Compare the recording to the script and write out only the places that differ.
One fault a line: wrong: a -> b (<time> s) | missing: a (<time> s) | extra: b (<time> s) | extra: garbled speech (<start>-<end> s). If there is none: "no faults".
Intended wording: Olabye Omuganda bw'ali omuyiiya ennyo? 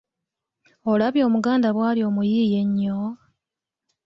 no faults